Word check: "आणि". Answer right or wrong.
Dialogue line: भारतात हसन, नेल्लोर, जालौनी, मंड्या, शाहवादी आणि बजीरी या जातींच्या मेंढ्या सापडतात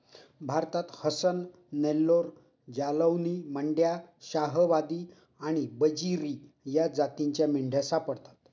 right